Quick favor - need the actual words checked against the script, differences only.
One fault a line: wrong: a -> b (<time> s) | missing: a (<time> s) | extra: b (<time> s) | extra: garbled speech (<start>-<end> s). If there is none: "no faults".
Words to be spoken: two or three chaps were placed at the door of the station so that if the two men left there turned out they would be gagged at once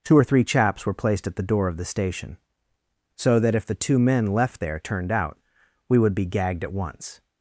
wrong: they -> we (5.9 s)